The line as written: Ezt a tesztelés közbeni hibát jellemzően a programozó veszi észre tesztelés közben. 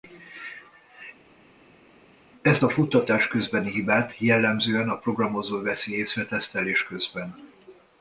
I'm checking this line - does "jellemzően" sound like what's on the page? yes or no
yes